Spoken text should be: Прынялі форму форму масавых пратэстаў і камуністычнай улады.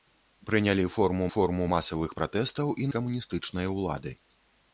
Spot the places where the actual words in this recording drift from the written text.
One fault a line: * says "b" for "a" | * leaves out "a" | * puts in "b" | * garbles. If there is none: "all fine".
all fine